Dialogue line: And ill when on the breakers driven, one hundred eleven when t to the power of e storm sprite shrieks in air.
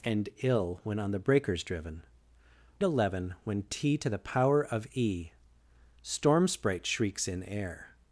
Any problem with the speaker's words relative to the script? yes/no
yes